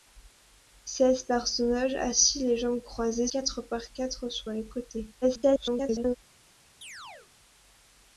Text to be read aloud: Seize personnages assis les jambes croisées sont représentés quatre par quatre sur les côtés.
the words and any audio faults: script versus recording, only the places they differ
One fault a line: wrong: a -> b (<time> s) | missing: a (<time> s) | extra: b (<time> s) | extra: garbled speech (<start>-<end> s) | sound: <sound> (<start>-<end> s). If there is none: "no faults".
missing: sont représentés (3.3 s)
extra: garbled speech (5.2-6.2 s)
sound: chirp (6.8-7.3 s)